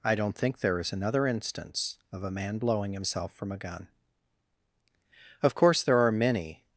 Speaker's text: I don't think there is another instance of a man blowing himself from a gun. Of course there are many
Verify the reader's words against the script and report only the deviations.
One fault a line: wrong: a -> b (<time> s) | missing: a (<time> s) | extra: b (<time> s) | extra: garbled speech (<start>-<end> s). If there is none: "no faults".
no faults